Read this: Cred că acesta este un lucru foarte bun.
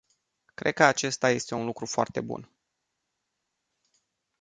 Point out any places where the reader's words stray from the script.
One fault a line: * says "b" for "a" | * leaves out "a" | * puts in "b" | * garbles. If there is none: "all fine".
all fine